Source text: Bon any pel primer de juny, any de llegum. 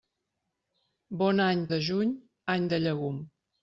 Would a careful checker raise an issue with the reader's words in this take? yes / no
yes